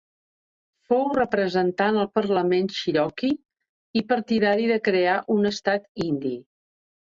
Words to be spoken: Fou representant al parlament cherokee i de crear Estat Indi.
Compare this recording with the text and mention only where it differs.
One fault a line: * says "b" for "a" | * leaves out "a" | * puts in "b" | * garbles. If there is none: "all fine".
* puts in "partidari"
* puts in "un"